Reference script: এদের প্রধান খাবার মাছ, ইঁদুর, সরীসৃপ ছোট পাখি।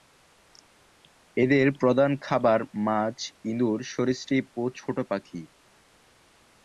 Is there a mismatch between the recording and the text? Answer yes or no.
yes